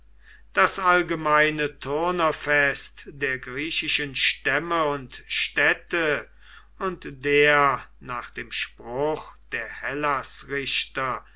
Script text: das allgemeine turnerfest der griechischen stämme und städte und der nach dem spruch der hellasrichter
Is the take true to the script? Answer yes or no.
yes